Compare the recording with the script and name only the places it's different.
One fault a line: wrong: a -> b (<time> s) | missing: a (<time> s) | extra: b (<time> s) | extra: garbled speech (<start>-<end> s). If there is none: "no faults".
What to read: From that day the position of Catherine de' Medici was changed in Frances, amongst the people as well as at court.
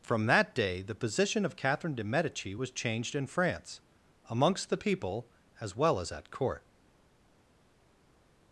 wrong: Frances -> France (3.3 s)